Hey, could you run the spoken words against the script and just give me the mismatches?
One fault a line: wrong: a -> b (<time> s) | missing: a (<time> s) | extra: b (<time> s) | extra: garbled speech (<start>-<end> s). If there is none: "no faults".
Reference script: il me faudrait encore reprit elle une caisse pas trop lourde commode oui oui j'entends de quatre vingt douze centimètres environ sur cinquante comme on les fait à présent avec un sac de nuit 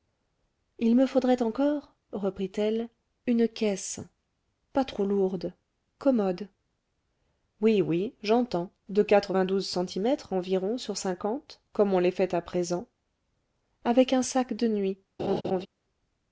no faults